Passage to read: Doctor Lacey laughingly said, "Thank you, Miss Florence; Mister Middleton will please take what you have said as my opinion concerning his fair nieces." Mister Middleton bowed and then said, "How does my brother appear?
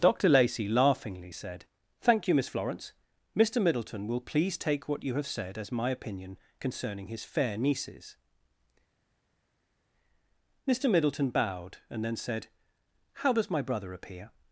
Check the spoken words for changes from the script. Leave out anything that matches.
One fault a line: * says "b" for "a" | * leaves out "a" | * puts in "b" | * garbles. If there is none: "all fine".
all fine